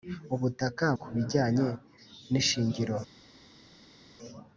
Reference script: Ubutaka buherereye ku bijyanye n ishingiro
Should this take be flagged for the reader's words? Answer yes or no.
yes